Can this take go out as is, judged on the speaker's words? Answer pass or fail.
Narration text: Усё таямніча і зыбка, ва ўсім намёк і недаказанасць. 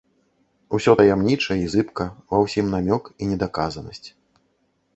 pass